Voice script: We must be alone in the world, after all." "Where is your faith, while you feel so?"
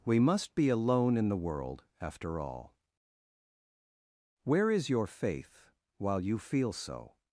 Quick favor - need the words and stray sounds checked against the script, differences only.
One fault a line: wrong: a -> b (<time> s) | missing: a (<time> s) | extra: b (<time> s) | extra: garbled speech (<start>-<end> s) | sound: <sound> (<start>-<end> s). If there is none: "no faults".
no faults